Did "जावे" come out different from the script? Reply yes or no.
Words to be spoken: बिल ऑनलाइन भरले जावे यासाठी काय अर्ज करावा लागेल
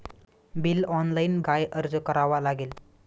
yes